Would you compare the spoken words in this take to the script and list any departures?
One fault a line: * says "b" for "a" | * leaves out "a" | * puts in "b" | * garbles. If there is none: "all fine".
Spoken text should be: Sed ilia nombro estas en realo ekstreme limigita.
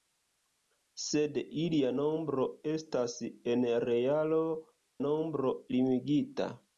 * says "nombro" for "ekstreme"